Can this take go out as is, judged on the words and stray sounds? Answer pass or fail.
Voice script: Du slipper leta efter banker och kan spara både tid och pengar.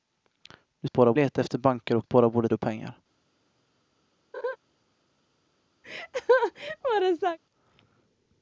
fail